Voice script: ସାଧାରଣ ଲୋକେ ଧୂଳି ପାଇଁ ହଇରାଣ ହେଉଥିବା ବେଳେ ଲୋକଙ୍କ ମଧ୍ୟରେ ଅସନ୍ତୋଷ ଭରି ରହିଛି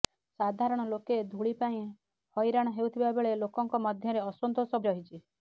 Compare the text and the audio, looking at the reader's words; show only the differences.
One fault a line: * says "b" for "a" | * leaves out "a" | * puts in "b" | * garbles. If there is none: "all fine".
* leaves out "ଭରି"